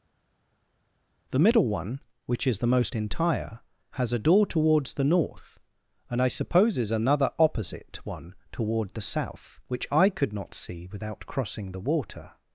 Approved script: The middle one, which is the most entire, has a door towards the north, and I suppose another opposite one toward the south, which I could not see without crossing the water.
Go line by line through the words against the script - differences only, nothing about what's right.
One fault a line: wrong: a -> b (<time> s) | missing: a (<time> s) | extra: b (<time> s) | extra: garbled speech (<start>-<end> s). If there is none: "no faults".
wrong: suppose -> supposes (6.3 s)